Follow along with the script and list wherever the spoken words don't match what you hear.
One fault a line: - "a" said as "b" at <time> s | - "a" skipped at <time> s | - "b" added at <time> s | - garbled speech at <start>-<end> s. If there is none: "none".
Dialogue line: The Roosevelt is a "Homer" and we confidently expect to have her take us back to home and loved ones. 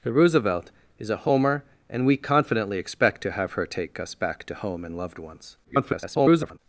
- garbled speech at 5.6-6.6 s